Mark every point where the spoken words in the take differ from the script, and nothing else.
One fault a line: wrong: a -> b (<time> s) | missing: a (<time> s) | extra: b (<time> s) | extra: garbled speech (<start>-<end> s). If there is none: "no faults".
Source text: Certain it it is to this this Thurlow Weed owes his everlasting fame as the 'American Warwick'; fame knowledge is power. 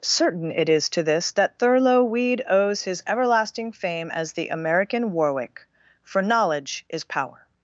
missing: it (0.7 s)
wrong: this -> that (1.3 s)
wrong: fame -> for (6.0 s)